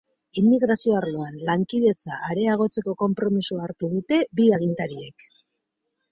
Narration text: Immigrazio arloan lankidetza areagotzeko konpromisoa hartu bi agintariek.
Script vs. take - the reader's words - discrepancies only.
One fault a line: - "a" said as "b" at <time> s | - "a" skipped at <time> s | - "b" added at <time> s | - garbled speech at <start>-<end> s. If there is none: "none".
- "dute" added at 3.9 s